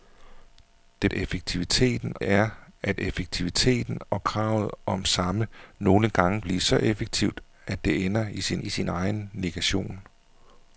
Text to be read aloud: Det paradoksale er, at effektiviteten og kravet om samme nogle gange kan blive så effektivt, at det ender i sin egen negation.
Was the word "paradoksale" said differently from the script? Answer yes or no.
yes